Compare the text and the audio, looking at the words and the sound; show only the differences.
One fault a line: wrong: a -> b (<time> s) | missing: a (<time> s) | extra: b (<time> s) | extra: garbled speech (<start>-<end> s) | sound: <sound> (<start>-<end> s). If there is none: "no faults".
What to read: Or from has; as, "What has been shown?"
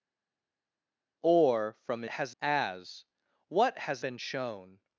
no faults